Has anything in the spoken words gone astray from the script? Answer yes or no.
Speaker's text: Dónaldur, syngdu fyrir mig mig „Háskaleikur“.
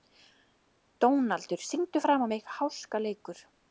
yes